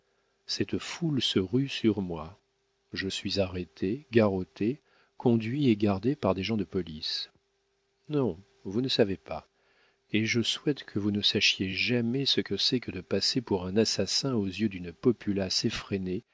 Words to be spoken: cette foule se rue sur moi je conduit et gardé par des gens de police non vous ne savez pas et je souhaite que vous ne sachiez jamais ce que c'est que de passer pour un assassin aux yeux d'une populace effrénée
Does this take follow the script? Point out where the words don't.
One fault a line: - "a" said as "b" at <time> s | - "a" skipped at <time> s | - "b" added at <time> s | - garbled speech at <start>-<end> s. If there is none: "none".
- "suis arrêté garrotté" added at 3.0 s